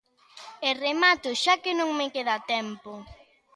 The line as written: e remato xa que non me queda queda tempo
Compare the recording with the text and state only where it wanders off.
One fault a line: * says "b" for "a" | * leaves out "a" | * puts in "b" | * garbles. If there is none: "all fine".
* leaves out "queda"